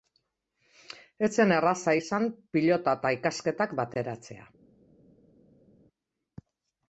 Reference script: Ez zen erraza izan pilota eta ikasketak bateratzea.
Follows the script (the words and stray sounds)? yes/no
yes